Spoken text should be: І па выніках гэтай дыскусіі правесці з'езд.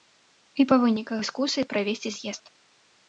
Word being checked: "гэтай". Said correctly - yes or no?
no